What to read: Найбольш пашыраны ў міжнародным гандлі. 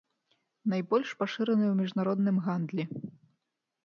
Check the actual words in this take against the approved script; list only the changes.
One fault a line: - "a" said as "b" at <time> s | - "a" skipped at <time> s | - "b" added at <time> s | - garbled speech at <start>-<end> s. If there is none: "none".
none